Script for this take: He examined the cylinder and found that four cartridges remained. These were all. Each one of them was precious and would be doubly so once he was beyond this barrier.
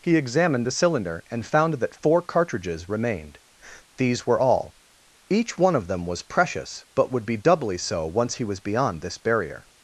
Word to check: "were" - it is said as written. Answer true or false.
true